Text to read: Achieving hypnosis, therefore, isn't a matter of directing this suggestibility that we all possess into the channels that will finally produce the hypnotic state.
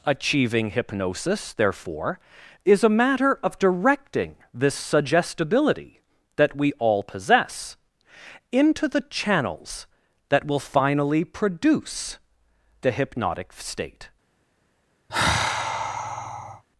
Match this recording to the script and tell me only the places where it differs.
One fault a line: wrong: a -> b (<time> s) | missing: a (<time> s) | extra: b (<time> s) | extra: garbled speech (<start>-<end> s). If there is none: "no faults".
wrong: isn't -> is (2.6 s)